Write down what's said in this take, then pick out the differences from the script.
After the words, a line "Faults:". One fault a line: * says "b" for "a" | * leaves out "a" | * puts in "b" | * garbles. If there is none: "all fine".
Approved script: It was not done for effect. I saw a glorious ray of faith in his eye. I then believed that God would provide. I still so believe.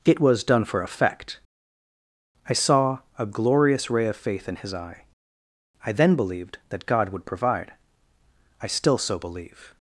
It was done for effect. I saw a glorious ray of faith in his eye. I then believed that God would provide. I still so believe.
Faults:
* leaves out "not"